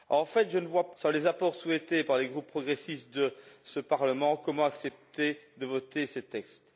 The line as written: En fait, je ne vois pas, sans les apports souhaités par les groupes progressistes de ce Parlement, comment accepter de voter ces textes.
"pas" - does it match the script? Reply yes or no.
no